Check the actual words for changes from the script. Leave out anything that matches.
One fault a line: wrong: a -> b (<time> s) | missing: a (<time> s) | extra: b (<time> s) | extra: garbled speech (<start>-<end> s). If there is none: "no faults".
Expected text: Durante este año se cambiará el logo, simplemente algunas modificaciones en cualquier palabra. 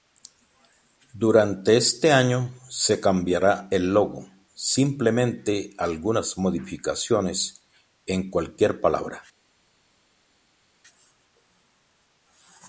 no faults